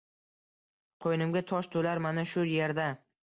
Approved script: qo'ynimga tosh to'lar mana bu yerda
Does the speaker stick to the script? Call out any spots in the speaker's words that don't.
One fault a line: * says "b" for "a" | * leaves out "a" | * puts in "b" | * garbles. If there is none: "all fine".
* says "shu" for "bu"